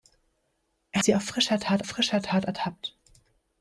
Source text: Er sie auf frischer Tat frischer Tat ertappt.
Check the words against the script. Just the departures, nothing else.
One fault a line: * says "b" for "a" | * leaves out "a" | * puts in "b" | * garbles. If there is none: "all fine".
all fine